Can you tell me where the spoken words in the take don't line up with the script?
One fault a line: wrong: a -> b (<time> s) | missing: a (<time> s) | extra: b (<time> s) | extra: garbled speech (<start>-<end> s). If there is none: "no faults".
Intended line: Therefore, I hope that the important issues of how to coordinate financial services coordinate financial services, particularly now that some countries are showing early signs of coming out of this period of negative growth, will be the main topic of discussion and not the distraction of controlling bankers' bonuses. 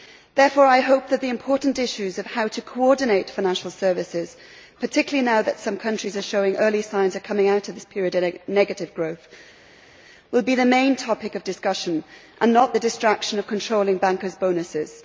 missing: coordinate financial services (4.3 s)